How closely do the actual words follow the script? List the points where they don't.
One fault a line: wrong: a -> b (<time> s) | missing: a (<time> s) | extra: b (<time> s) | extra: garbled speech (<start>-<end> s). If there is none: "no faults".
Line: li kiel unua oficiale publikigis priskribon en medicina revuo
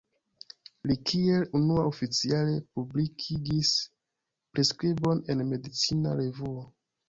no faults